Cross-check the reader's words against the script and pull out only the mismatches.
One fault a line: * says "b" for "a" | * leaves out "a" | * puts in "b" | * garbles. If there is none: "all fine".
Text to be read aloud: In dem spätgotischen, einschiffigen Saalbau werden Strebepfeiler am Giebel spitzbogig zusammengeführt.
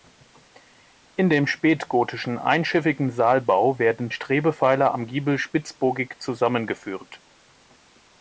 all fine